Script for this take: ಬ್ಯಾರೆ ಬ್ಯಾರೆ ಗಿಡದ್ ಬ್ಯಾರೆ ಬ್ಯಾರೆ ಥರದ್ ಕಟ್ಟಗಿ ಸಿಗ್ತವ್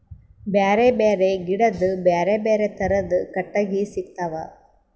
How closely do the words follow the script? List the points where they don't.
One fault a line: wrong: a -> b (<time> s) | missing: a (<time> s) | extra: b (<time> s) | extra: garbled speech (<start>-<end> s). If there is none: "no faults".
no faults